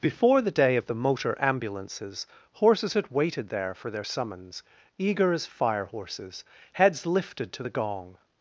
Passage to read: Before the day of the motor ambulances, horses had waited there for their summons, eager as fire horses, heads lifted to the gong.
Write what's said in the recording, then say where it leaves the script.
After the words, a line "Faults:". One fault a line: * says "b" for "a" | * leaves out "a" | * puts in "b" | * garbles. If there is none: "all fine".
Before the day of the motor ambulances, horses had waited there for their summons, eager as fire horses, heads lifted to the gong.
Faults:
all fine